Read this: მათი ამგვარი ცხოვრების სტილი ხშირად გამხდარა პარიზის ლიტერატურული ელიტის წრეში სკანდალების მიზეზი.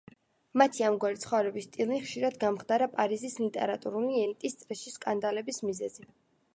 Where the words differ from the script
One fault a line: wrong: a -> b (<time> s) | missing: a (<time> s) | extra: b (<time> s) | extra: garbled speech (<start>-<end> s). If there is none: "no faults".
no faults